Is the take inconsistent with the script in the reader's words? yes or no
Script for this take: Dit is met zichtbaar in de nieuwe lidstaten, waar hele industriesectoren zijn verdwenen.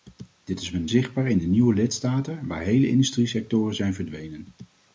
no